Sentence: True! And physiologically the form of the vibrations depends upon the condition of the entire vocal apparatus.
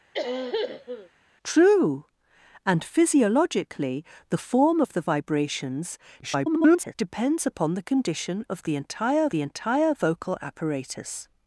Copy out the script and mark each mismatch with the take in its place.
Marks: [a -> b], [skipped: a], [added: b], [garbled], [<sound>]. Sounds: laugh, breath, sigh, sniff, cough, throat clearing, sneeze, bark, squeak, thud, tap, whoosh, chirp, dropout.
[cough] True! And physiologically the form of the vibrations [garbled] depends upon the condition of the entire [added: the entire] vocal apparatus.